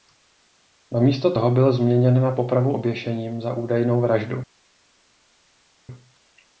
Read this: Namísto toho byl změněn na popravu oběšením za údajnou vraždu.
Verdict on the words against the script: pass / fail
pass